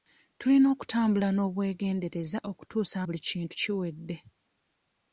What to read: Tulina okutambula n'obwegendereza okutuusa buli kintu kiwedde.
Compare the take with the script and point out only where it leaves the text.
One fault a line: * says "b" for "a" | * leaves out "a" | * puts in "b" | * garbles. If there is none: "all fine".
all fine